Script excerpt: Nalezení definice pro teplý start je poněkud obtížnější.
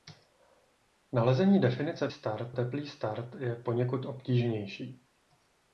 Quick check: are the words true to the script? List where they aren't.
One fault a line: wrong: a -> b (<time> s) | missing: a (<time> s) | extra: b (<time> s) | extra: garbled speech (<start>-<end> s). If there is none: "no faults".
wrong: pro -> start (2.1 s)